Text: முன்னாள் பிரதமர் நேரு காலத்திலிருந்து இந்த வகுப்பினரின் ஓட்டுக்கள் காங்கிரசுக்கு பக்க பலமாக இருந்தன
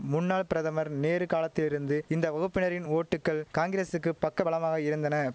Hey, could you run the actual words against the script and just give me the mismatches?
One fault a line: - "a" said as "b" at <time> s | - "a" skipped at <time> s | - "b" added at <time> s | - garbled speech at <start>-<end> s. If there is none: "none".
none